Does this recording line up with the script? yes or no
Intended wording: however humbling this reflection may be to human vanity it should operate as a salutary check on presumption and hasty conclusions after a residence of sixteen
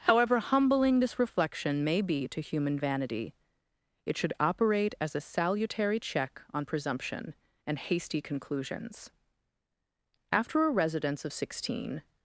yes